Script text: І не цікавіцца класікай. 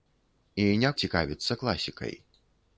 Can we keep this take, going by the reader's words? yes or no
yes